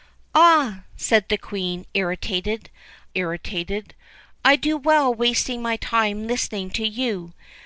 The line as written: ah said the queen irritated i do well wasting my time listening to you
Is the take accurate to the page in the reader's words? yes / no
no